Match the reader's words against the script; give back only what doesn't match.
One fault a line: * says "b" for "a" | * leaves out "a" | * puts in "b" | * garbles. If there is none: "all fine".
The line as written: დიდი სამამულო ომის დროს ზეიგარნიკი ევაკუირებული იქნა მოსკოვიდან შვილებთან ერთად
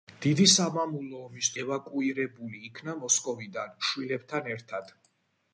* leaves out "დროს ზეიგარნიკი"